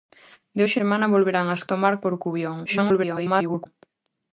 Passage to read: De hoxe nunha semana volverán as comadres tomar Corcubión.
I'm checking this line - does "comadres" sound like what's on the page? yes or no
no